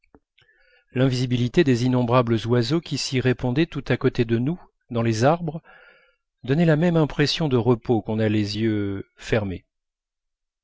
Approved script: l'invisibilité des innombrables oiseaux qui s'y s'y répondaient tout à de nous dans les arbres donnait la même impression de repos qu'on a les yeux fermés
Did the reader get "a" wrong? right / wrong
right